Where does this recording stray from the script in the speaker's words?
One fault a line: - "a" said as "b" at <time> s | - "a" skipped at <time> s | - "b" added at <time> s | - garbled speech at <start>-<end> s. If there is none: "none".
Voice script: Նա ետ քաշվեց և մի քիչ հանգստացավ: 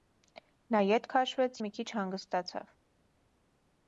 - "և" skipped at 1.6 s